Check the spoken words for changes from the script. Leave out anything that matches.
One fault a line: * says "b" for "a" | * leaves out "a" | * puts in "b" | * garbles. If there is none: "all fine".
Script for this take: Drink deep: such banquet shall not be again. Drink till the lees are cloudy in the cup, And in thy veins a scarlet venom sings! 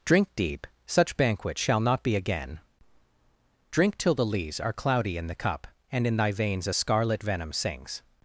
all fine